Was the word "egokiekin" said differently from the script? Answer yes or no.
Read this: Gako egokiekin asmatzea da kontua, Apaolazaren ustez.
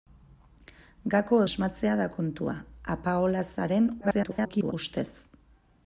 yes